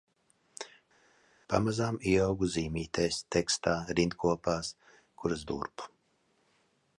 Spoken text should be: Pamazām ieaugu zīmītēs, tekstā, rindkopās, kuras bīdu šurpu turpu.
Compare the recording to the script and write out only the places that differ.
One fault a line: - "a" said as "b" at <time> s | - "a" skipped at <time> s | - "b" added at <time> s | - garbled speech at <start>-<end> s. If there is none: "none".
- "bīdu šurpu" skipped at 5.4 s